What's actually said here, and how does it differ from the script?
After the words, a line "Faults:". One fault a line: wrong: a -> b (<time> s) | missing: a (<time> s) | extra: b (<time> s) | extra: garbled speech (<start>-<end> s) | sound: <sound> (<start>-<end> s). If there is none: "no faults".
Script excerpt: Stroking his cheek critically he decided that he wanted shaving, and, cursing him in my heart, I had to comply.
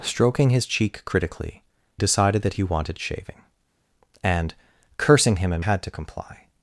Stroking his cheek critically decided that he wanted shaving, and, cursing him in had to comply.
Faults:
missing: he (1.6 s)
missing: my heart I (5.6 s)